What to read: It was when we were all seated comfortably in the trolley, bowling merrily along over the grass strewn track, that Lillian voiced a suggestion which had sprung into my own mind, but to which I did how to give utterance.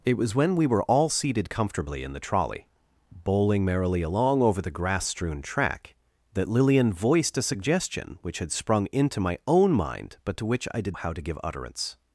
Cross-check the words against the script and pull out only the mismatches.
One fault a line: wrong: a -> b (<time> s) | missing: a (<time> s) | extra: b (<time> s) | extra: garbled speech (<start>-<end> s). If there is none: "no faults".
no faults